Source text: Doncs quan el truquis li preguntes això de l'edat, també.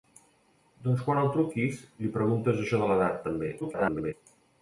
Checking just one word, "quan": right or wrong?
right